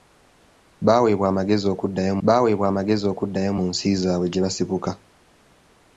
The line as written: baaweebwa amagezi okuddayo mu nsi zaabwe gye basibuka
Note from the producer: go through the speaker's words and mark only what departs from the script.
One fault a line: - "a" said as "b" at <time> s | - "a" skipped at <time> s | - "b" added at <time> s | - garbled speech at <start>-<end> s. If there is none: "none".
- "baaweebwa amagezi okuddayo" added at 2.3 s